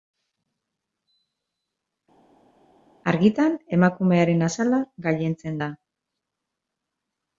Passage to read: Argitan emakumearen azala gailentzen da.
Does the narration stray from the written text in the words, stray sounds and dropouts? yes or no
no